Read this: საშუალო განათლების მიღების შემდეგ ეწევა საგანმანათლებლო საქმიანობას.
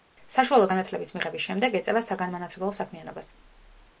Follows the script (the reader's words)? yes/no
yes